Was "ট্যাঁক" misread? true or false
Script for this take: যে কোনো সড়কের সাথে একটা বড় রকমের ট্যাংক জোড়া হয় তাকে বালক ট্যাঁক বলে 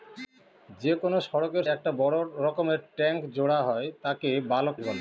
true